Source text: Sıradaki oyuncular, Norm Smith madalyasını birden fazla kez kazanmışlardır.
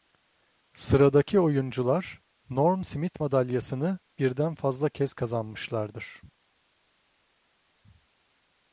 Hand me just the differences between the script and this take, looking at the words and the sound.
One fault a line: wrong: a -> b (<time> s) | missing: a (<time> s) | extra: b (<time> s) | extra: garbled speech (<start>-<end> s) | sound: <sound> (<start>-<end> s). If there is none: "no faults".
no faults